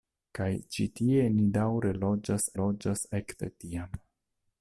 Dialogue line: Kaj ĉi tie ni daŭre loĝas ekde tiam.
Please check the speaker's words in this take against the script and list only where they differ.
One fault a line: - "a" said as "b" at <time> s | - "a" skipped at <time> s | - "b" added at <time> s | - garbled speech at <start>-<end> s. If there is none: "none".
- "loĝas" added at 2.6 s